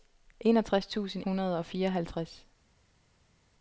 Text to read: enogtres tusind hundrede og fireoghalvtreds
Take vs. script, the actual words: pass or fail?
pass